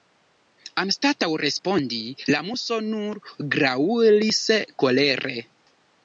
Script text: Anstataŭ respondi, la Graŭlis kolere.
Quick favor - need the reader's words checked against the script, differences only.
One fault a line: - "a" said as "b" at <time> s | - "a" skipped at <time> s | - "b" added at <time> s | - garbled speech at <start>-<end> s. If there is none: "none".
- "Muso nur" added at 2.5 s